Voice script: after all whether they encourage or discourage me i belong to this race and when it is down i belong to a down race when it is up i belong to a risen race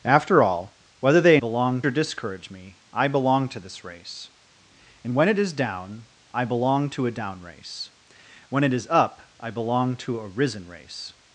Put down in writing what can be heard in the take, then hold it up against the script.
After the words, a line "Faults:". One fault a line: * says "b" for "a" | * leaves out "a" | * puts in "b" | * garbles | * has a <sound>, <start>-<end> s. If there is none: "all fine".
after all whether they belong or discourage me i belong to this race and when it is down i belong to a down race when it is up i belong to a risen race
Faults:
* says "belong" for "encourage"